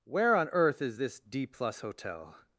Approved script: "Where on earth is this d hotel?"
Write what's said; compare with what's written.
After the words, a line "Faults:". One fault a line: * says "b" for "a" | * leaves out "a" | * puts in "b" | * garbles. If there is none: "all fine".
"Where on earth is this d plus hotel?"
Faults:
* puts in "plus"